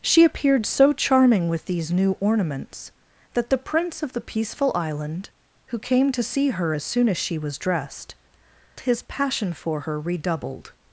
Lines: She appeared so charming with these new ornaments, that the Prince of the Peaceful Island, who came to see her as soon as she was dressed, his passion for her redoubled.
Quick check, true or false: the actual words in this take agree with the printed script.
true